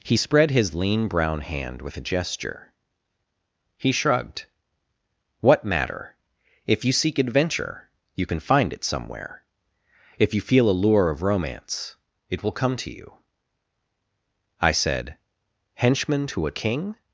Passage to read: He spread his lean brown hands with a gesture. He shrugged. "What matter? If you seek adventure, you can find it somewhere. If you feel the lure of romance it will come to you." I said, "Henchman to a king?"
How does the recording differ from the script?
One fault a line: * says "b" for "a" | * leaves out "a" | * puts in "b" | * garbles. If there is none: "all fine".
* says "hand" for "hands"
* says "a" for "the"